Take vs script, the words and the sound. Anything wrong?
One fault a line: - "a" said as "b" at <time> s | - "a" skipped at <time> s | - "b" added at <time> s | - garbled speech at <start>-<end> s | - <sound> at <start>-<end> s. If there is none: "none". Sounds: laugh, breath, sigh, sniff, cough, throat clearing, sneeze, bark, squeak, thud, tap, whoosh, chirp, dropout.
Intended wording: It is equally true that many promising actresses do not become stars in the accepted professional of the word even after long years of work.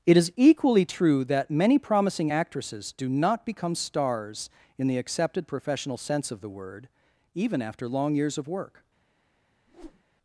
- "sense" added at 6.0 s
- whoosh at 9.7-10.0 s